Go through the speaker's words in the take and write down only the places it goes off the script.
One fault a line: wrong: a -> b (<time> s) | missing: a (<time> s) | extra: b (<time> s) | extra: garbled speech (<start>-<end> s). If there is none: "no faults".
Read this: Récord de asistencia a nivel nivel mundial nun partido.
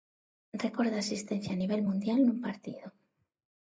missing: nivel (1.8 s)